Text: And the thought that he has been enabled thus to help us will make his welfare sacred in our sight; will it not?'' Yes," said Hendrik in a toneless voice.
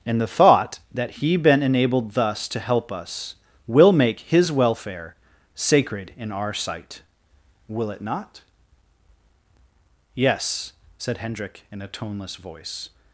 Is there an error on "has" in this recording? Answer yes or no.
yes